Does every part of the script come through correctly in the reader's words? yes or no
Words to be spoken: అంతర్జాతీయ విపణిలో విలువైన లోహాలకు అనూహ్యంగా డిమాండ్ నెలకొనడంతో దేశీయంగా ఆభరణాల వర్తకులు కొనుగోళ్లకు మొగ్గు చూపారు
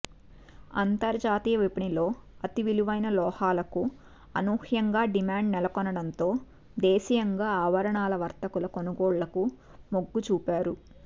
no